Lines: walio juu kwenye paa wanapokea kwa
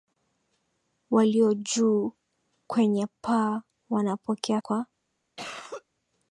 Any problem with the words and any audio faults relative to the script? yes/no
yes